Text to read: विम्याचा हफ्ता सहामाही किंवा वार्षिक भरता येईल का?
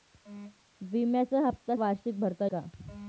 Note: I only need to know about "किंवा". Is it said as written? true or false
false